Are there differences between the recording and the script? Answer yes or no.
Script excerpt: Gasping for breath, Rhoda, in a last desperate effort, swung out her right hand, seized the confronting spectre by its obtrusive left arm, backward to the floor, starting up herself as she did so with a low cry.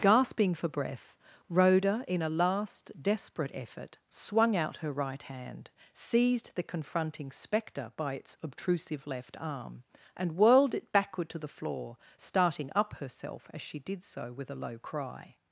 yes